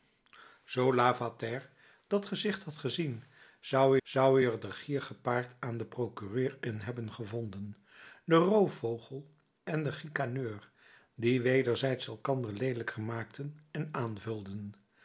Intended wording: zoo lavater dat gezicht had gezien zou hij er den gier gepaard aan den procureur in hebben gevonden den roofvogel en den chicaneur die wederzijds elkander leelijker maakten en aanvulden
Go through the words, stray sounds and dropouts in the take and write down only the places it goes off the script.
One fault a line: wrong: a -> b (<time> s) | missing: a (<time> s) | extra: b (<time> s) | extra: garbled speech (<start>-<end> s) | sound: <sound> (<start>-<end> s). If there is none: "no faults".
extra: zou (4.0 s)